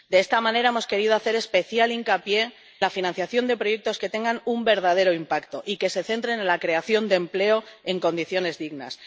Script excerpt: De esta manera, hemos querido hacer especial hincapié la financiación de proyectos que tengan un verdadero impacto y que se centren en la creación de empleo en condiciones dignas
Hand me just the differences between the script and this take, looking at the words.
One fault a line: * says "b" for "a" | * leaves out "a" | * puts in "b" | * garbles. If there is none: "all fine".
all fine